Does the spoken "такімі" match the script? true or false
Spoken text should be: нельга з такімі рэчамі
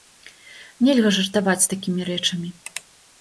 true